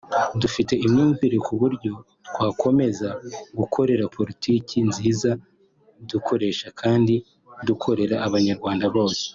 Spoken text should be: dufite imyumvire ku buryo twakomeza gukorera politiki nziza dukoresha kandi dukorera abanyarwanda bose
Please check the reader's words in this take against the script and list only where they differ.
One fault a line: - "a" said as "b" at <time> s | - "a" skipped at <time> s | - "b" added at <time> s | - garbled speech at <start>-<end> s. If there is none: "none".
none